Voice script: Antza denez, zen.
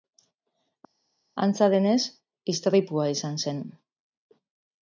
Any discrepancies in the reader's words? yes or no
yes